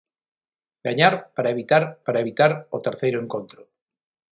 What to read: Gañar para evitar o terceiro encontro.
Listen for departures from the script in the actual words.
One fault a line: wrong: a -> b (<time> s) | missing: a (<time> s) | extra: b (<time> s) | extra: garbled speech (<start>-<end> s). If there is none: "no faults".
extra: para evitar (2.0 s)